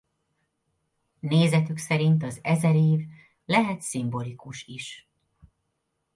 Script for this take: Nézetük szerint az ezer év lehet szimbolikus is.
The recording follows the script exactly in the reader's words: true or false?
true